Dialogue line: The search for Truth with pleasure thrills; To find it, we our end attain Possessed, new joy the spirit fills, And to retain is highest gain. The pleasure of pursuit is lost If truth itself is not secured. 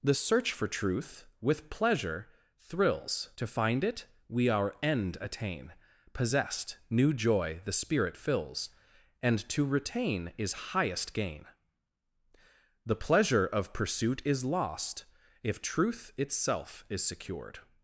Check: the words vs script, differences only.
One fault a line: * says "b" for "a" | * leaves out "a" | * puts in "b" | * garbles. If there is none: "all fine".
* leaves out "not"